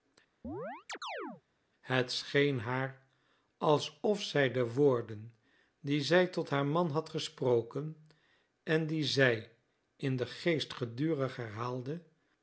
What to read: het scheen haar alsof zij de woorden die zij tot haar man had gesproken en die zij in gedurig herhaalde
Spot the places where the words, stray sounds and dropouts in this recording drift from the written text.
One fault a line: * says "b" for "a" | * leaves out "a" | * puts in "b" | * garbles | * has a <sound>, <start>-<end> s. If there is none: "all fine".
* has a chirp, 0.4-1.4 s
* puts in "den geest"